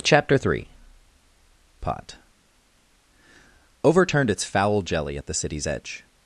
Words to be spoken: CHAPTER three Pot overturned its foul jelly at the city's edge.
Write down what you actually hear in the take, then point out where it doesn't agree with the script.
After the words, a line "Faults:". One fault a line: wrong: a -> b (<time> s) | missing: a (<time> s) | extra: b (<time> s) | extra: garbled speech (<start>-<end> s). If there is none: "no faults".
CHAPTER three Pot overturned its foul jelly at the city's edge.
Faults:
no faults